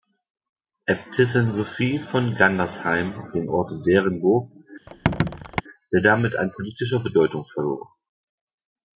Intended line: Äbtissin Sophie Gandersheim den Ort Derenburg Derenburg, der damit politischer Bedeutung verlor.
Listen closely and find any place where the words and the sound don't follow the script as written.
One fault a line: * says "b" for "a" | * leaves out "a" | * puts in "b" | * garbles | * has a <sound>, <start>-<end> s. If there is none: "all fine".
* puts in "von"
* leaves out "Derenburg"
* has a squeak, 4.9-5.6 s
* puts in "an"